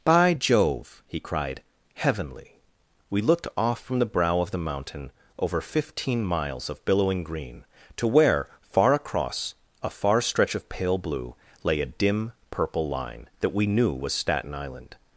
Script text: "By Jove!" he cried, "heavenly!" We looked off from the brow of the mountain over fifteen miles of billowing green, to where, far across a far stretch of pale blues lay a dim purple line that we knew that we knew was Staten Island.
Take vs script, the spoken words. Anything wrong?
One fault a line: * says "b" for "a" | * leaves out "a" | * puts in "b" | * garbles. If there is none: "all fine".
* says "blue" for "blues"
* leaves out "that we knew"